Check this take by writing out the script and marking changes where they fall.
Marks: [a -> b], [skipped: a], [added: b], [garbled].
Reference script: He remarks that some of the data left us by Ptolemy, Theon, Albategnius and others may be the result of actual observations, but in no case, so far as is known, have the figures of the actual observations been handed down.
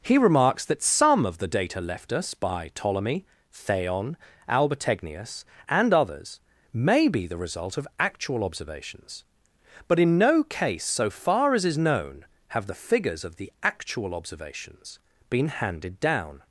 He remarks that some of the data left us by Ptolemy, Theon, Albategnius and others may be the result of actual observations, but in no case, so far as is known, have the figures of the actual observations been handed down.